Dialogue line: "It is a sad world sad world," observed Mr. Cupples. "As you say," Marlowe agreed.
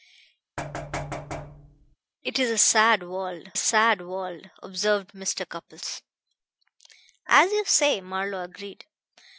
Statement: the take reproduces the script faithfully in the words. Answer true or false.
true